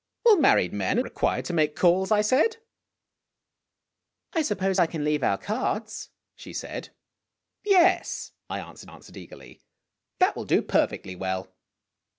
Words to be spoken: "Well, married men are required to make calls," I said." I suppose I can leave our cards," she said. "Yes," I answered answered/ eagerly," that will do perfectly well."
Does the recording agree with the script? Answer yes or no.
yes